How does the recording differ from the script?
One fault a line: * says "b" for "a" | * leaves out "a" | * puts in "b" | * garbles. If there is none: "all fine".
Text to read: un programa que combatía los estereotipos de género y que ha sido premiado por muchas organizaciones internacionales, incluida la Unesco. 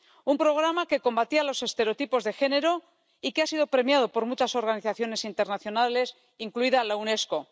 all fine